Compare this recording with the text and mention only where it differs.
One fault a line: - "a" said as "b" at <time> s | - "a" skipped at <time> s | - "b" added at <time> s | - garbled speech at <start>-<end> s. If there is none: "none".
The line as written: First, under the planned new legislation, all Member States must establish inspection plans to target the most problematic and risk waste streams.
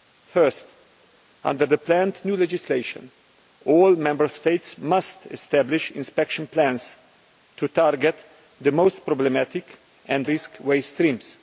none